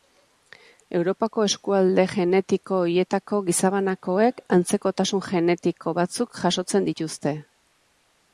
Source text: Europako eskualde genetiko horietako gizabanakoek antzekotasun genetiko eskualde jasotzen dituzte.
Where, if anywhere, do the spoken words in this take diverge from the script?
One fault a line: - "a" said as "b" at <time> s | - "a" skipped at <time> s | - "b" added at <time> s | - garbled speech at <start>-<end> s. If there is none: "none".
- "eskualde" said as "batzuk" at 6.0 s